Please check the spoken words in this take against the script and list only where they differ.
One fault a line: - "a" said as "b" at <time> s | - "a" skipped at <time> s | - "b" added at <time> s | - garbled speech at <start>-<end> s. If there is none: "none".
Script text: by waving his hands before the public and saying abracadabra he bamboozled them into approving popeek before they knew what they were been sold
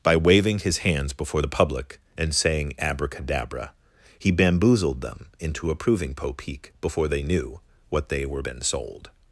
none